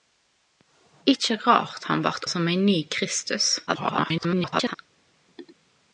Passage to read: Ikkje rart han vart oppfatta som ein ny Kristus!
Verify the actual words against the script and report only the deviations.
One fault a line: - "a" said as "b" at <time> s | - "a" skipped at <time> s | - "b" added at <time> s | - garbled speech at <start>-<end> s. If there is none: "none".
- "oppfatta" skipped at 2.2 s
- garbled speech at 3.7-4.8 s